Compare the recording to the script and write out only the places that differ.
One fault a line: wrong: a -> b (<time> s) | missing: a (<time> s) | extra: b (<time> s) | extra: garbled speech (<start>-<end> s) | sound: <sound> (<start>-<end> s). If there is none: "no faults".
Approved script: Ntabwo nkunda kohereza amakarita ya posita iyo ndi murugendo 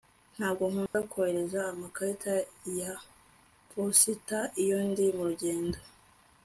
sound: dropout (0.9-0.9 s)